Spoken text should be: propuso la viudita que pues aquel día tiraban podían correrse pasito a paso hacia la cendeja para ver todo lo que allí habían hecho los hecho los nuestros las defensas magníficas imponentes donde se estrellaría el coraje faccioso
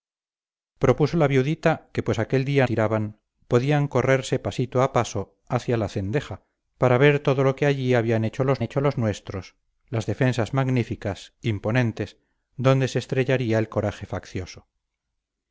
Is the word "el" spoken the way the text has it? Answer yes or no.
yes